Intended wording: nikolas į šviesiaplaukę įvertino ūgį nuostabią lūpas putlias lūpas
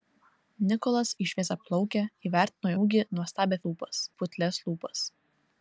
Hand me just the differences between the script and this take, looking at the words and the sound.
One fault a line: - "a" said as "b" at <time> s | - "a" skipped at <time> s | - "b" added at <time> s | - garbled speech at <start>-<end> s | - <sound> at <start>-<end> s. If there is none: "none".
none